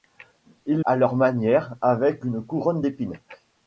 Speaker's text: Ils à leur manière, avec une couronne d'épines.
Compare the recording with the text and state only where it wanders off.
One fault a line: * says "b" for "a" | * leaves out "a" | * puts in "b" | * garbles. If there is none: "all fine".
all fine